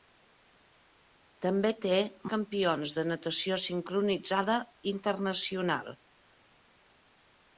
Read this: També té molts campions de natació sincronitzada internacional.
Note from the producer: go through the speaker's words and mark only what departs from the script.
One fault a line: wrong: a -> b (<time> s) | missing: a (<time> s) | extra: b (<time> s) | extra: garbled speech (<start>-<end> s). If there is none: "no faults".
missing: molts (2.0 s)